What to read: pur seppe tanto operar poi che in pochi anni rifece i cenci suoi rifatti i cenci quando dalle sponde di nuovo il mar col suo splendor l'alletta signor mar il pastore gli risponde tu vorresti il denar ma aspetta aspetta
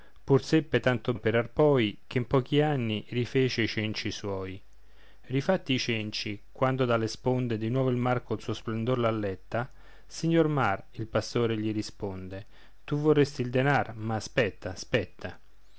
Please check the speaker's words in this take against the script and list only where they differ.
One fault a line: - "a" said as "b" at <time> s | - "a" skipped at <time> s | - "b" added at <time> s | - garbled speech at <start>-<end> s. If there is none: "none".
none